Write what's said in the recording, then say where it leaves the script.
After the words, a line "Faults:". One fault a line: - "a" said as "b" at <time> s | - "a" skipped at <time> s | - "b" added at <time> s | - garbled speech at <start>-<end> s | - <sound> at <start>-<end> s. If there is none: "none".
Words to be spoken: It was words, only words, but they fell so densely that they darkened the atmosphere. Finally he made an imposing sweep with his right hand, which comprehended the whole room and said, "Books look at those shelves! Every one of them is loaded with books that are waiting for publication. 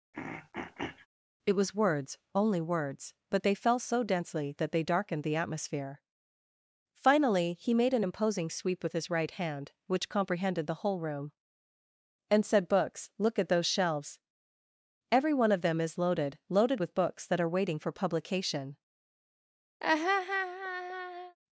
It was words, only words, but they fell so densely that they darkened the atmosphere. Finally he made an imposing sweep with his right hand, which comprehended the whole room and said, "Books look at those shelves! Every one of them is loaded loaded with books that are waiting for publication.
Faults:
- throat clearing at 0.1-1.1 s
- "loaded" added at 16.5 s
- laugh at 19.8-21.4 s